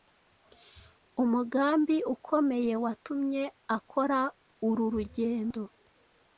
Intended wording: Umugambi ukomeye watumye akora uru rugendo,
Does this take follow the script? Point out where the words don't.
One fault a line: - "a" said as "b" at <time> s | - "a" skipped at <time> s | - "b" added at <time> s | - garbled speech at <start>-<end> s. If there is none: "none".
none